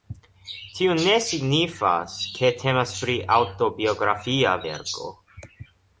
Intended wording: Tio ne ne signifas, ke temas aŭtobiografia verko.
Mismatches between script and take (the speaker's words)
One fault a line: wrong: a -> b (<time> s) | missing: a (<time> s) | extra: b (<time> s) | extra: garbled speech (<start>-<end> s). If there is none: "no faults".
missing: ne (1.2 s)
extra: pri (3.0 s)